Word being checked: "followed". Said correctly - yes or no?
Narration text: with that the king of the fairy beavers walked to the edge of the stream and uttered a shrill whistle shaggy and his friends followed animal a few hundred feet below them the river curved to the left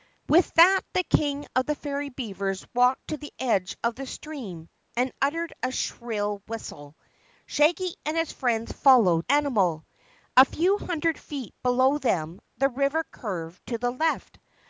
yes